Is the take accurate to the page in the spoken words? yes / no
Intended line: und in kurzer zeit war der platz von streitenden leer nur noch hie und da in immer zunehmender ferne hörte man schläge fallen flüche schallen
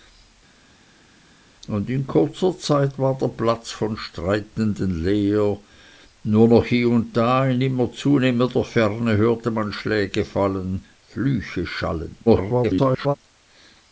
no